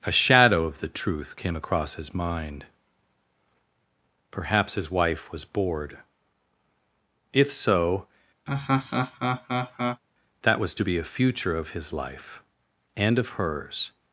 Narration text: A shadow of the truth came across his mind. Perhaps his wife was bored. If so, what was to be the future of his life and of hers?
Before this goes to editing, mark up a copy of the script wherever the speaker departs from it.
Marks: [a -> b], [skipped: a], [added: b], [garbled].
A shadow of the truth came across his mind. Perhaps his wife was bored. If so, [what -> that] was to be [the -> a] future of his life and of hers?